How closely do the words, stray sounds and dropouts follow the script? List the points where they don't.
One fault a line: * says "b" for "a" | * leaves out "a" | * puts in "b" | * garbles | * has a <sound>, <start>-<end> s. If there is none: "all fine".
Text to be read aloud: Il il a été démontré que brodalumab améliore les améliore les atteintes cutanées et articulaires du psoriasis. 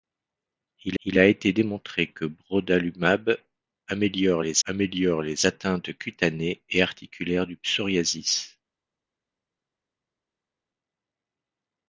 all fine